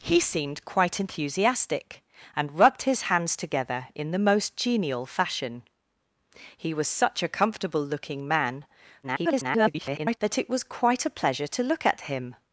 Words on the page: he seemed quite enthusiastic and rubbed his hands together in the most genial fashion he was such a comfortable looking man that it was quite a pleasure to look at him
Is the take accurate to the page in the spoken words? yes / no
no